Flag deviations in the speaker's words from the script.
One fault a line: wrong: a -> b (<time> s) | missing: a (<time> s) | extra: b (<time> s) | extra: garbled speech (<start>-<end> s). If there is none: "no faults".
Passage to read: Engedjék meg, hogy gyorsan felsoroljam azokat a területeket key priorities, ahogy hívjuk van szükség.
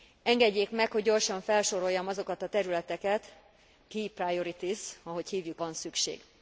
no faults